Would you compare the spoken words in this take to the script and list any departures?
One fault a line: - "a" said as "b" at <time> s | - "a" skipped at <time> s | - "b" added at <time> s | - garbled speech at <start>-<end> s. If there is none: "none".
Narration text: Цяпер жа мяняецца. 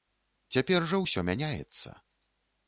- "ўсё" added at 1.0 s